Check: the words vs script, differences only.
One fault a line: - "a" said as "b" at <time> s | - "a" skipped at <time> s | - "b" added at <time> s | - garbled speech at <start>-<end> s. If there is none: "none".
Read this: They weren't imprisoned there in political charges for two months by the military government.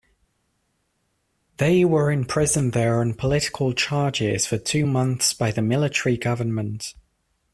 - "weren't" said as "were" at 1.8 s
- "in" said as "on" at 3.0 s